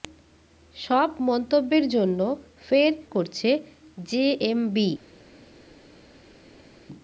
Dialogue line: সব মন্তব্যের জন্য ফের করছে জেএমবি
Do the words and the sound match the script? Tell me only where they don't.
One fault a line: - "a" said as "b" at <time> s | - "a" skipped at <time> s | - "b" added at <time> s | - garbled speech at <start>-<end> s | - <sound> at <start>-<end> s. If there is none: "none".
none